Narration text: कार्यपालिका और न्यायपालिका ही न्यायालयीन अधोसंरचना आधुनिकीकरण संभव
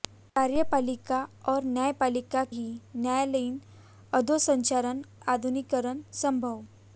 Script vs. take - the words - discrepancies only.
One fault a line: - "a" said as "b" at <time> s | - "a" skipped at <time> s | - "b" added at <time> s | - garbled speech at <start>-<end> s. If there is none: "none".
none